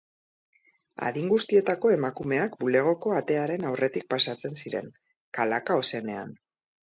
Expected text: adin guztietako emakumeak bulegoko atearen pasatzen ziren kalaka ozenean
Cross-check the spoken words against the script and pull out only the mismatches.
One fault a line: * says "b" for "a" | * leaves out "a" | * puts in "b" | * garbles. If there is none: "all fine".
* puts in "aurretik"